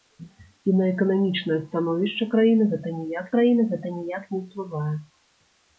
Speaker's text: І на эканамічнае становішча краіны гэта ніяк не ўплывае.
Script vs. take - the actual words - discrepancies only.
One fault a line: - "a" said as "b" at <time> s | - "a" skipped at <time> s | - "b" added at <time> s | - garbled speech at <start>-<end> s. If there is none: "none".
- "краіны гэта ніяк" added at 3.3 s